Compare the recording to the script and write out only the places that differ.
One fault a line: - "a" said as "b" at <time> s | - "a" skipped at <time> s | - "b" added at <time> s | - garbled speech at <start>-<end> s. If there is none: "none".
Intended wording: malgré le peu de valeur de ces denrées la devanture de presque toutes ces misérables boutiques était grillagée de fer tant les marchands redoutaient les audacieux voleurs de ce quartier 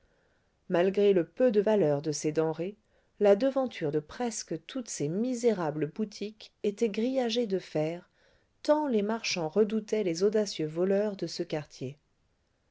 none